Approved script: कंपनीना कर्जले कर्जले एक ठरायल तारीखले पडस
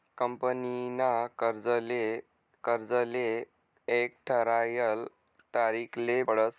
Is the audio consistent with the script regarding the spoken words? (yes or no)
yes